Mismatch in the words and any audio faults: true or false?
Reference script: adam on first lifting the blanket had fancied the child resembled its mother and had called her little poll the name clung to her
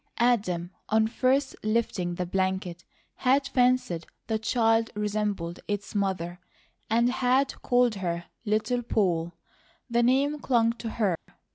true